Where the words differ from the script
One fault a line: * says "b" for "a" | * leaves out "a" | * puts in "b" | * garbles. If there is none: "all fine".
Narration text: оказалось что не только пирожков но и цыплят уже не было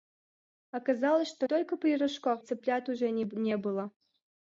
* leaves out "не"
* leaves out "но и"